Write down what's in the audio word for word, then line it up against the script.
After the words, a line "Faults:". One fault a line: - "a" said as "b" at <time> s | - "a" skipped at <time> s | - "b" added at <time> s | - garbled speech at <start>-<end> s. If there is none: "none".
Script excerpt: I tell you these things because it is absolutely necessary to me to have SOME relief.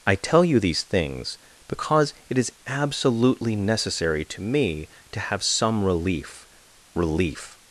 I tell you these things because it is absolutely necessary to me to have SOME relief relief.
Faults:
- "relief" added at 7.0 s